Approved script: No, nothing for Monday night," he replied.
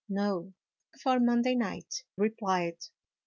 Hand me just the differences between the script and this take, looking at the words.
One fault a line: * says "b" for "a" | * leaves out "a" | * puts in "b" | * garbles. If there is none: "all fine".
* leaves out "nothing"
* leaves out "he"